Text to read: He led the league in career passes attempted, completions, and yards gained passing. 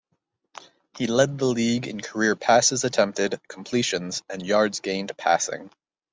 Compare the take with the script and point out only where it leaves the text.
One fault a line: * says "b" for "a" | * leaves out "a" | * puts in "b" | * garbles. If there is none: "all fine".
all fine